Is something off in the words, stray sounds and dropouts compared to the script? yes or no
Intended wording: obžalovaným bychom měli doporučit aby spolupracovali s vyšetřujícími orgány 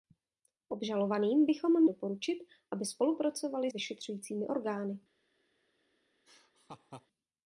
yes